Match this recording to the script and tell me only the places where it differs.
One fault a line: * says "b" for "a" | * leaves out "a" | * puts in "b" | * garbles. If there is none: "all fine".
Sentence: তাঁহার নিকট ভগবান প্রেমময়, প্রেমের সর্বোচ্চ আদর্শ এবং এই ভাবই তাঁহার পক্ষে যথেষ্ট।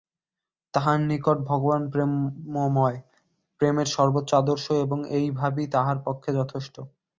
all fine